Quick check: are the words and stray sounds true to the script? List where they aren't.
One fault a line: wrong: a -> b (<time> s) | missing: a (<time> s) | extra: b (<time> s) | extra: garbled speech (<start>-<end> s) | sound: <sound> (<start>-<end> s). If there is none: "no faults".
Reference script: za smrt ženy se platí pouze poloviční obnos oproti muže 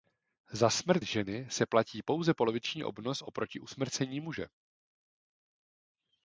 extra: usmrcení (3.6 s)